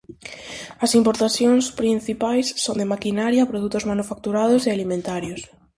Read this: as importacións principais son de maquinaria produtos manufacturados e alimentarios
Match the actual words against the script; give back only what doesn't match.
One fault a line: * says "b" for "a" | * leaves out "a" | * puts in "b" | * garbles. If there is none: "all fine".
all fine